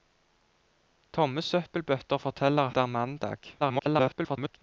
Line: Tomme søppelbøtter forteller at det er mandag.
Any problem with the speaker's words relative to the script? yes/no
yes